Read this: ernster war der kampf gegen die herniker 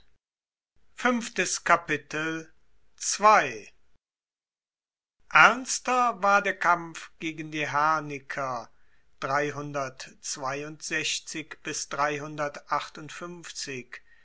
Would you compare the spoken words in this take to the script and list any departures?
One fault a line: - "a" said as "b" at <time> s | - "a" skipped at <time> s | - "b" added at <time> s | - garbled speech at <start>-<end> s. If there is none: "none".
none